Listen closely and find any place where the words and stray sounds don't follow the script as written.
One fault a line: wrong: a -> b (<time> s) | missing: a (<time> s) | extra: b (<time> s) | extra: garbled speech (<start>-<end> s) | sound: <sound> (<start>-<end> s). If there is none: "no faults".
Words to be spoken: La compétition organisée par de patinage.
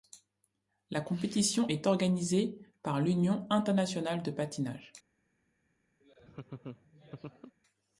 extra: est (1.7 s)
extra: l'Union internationale (3.0 s)
sound: laugh (6.0-7.6 s)